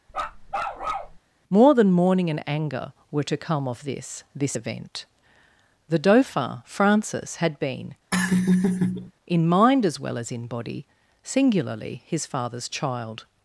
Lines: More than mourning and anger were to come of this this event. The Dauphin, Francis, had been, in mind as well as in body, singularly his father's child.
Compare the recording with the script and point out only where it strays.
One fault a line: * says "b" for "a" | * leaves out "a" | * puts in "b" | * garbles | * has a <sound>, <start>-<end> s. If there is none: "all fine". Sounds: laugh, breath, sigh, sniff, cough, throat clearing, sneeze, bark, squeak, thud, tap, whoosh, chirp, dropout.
* has a bark, 0.1-1.2 s
* has a laugh, 8.1-9.1 s